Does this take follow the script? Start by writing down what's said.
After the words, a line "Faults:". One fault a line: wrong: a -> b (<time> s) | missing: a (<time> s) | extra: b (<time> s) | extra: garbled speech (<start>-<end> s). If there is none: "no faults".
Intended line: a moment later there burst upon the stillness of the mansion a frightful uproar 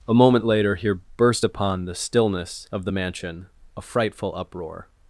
a moment later here burst upon the stillness of the mansion a frightful uproar
Faults:
wrong: there -> here (0.8 s)